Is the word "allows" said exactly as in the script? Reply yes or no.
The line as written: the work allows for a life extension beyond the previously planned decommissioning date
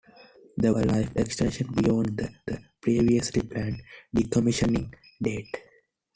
no